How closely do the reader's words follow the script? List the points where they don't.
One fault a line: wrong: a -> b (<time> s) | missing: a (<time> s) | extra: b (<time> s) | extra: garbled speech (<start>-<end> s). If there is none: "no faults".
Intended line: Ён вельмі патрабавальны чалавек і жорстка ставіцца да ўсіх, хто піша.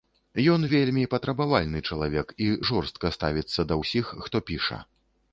no faults